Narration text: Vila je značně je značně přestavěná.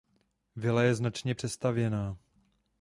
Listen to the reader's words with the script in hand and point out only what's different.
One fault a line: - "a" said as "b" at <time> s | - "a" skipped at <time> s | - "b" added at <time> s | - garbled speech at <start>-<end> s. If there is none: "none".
- "je značně" skipped at 1.4 s